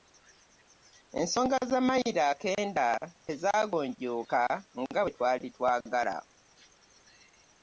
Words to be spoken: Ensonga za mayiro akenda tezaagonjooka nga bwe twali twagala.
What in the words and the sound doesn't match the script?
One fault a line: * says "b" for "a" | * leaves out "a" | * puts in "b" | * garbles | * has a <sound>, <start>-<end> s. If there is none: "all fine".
all fine